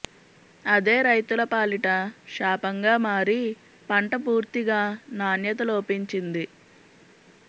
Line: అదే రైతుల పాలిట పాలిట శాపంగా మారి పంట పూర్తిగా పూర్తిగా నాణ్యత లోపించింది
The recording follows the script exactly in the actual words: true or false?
false